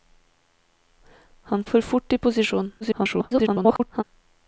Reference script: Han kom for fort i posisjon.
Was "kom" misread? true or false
true